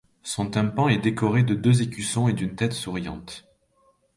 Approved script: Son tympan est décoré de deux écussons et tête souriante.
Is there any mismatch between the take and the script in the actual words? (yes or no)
yes